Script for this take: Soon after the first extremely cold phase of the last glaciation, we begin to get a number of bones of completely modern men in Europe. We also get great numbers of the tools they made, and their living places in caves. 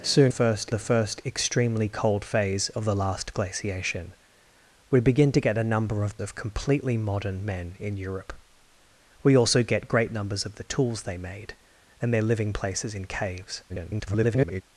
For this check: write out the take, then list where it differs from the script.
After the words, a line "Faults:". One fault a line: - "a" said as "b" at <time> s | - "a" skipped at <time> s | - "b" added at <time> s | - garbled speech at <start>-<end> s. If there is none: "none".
Soon first the first extremely cold phase of the last glaciation, we begin to get a number of of completely modern men in Europe. We also get great numbers of the tools they made, and their living places in caves. [garbled]
Faults:
- "after" said as "first" at 0.3 s
- "bones" skipped at 6.2 s
- garbled speech at 13.7-14.6 s